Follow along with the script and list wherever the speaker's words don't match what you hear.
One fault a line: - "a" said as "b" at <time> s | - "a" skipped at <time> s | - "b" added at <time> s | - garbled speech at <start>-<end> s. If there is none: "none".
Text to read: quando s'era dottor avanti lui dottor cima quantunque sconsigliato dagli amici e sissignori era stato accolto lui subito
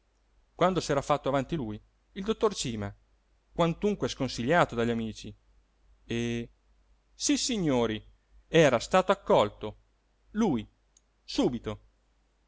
- "dottor" said as "fatto" at 1.0 s
- "il" added at 2.1 s